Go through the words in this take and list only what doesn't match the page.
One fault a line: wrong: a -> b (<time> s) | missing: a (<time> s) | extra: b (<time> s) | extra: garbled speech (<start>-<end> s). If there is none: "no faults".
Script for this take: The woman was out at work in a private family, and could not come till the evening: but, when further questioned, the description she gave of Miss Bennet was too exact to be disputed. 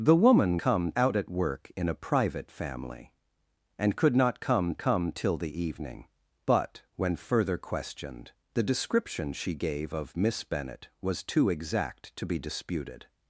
wrong: was -> come (0.6 s)
extra: come (4.8 s)